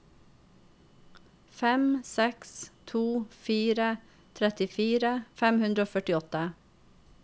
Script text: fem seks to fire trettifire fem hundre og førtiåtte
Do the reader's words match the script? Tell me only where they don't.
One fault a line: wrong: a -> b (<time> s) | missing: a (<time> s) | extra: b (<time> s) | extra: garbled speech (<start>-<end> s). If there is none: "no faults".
no faults